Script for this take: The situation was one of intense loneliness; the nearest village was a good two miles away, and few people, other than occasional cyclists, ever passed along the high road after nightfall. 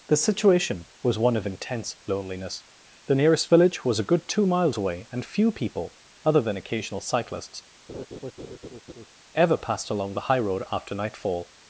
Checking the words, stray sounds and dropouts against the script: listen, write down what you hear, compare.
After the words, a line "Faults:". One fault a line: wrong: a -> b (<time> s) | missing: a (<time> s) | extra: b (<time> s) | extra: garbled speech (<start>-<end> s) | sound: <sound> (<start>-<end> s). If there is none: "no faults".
The situation was one of intense loneliness; the nearest village was a good two miles away, and few people, other than occasional cyclists, ever passed along the high road after nightfall.
Faults:
sound: laugh (7.9-9.1 s)